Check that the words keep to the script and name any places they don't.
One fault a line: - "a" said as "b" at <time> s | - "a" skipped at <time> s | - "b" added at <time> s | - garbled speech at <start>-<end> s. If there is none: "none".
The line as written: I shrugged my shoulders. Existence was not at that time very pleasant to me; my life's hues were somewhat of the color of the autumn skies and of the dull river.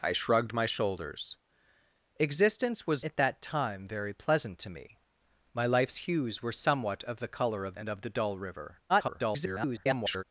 - "not" skipped at 3.0 s
- "the autumn skies" skipped at 7.8 s
- garbled speech at 8.9-10.2 s